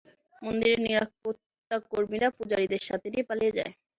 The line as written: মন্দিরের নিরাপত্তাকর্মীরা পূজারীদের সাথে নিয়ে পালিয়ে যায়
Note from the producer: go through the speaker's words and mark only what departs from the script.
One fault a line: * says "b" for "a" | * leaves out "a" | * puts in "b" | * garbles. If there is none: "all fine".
all fine